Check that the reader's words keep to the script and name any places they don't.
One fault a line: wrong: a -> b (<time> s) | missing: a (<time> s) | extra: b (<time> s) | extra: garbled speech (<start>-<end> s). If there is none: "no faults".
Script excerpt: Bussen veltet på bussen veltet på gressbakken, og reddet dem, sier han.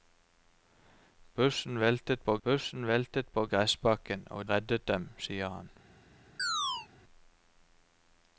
no faults